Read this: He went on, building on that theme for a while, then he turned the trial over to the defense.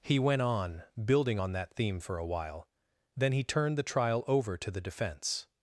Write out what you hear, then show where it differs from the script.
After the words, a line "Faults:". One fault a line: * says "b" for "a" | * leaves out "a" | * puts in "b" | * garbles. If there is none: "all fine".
He went on, building on that theme for a while, then he turned the trial over to the defense.
Faults:
all fine